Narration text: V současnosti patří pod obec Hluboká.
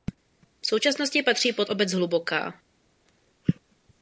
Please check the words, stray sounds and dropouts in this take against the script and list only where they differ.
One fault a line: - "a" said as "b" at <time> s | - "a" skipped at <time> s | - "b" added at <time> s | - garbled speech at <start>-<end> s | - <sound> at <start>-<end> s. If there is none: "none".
none